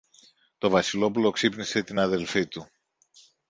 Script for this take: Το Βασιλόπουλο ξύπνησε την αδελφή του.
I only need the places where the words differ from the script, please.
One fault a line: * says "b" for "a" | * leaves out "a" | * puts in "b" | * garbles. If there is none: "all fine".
all fine